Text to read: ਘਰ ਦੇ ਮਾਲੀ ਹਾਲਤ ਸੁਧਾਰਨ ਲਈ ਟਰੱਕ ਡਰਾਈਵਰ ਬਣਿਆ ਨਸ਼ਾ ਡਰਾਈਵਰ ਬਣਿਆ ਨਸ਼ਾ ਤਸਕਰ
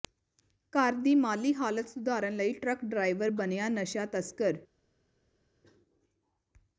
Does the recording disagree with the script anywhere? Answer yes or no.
yes